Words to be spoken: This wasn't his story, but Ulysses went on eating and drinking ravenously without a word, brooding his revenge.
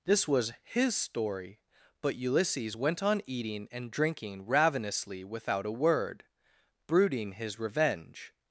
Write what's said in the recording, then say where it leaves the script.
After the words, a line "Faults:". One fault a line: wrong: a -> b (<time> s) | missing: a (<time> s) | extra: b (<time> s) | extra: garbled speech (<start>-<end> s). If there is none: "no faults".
This was his story, but Ulysses went on eating and drinking ravenously without a word, brooding his revenge.
Faults:
wrong: wasn't -> was (0.3 s)